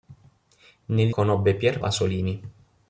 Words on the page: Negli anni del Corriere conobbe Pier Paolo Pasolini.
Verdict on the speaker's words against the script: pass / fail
fail